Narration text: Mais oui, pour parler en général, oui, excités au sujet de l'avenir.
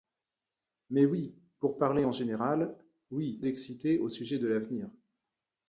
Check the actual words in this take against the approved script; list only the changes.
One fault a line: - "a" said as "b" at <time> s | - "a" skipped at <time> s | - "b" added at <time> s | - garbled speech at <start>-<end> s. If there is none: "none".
none